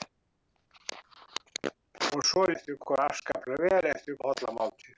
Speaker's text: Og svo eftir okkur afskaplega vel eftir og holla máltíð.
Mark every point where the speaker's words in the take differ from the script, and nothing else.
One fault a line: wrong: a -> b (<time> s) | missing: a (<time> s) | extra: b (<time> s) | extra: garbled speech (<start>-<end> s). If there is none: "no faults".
no faults